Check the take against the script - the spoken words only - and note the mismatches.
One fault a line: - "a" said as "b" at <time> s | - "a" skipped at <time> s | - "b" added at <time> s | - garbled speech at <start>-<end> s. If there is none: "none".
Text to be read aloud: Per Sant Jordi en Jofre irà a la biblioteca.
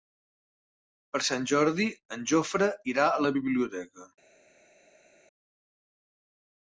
none